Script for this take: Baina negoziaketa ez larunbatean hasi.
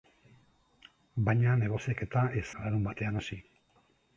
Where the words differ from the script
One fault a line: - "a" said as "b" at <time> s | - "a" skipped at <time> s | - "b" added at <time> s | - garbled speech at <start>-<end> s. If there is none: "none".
none